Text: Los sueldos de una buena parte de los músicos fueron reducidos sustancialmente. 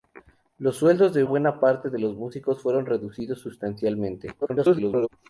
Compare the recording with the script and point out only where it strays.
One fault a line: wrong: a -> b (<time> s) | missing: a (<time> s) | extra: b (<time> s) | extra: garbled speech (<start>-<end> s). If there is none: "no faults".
missing: una (1.2 s)
extra: garbled speech (4.4-5.1 s)